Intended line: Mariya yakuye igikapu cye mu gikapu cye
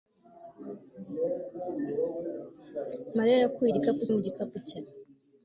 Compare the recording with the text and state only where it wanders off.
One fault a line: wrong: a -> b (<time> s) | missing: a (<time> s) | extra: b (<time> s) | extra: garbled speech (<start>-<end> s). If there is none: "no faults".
missing: cye (4.0 s)